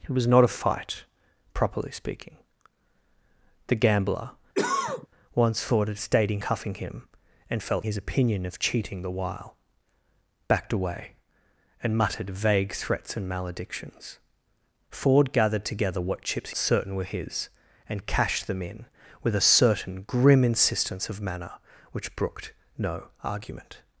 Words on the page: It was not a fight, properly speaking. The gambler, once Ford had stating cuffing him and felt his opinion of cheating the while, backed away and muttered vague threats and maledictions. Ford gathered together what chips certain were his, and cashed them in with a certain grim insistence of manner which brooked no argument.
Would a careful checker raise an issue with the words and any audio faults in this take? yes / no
yes